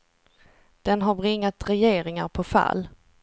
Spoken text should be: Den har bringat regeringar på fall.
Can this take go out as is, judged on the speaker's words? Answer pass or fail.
pass